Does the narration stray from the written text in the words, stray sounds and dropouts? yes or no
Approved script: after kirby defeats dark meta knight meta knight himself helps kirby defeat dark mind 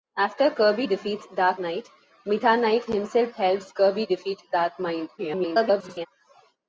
yes